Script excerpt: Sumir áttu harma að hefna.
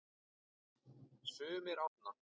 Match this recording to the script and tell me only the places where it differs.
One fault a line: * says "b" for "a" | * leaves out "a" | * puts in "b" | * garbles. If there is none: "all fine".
* leaves out "áttu harma að"